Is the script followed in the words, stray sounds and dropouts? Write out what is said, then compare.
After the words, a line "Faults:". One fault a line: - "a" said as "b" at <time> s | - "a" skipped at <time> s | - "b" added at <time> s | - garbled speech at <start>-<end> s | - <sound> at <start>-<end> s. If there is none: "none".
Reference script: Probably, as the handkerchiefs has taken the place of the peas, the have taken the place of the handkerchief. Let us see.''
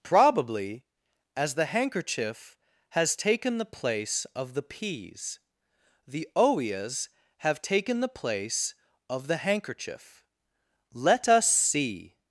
Probably, as the handkerchief has taken the place of the peas, the oeas have taken the place of the handkerchief. Let us see.''
Faults:
- "handkerchiefs" said as "handkerchief" at 1.6 s
- "oeas" added at 6.3 s